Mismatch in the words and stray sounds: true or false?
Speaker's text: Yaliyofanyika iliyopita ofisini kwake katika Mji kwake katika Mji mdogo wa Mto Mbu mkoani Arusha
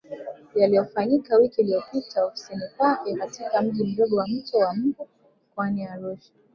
true